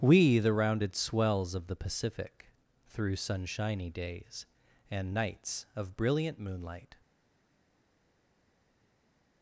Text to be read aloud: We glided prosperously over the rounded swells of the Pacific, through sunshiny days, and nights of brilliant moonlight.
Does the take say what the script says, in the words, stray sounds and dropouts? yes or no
no